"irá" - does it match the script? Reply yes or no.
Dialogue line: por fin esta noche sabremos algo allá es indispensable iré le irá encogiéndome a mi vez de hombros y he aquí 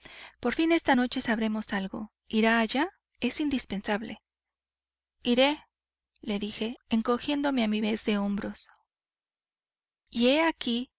no